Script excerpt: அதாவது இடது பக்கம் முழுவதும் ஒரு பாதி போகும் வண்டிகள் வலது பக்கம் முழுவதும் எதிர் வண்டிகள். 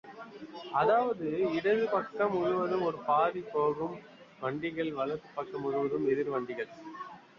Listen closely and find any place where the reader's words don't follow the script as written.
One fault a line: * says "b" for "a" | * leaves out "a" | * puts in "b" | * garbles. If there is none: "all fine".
all fine